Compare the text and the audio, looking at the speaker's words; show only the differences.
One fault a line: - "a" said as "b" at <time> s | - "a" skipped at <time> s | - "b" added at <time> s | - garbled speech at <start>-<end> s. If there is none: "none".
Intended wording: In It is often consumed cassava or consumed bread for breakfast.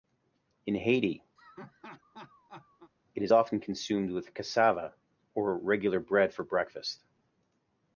- "Haiti" added at 0.7 s
- "with" added at 4.1 s
- "consumed" said as "regular" at 5.6 s